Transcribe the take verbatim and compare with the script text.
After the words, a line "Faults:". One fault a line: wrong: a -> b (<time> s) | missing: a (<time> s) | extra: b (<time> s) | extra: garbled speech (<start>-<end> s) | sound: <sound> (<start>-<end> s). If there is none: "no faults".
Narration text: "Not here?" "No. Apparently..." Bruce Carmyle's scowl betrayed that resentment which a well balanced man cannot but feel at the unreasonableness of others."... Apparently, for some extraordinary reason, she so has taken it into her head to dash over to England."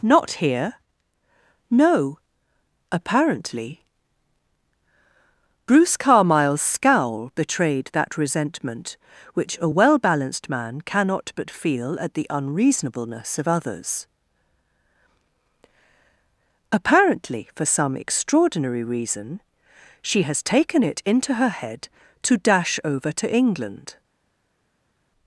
"Not here?" "No. Apparently..." Bruce Carmyle's scowl betrayed that resentment which a well balanced man cannot but feel at the unreasonableness of others."... Apparently, for some extraordinary reason, she has taken it into her head to dash over to England."
Faults:
missing: so (20.2 s)